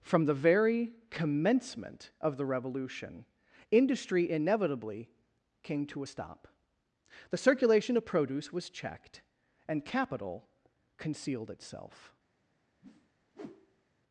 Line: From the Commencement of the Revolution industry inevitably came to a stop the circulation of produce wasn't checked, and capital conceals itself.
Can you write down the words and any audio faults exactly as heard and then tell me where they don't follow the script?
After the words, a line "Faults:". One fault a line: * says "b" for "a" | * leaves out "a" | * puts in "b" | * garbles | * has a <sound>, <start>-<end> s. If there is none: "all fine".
From the very Commencement of the Revolution industry inevitably came to a stop the circulation of produce was checked, and capital concealed itself.
Faults:
* puts in "very"
* says "was" for "wasn't"
* says "concealed" for "conceals"
* has a whoosh, 12.8-13.9 s